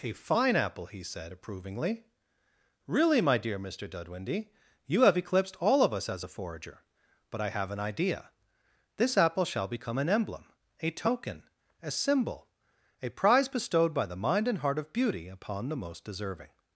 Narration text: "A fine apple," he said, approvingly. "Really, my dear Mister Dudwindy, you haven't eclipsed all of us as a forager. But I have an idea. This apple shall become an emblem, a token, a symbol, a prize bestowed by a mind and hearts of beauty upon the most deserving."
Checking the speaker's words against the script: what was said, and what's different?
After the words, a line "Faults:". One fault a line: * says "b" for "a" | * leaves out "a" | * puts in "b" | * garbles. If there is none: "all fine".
"A fine apple," he said, approvingly. "Really, my dear Mister Dudwindy, you have eclipsed all of us as a forager. But I have an idea. This apple shall become an emblem, a token, a symbol, a prize bestowed by the mind and heart of beauty upon the most deserving."
Faults:
* says "have" for "haven't"
* says "the" for "a"
* says "heart" for "hearts"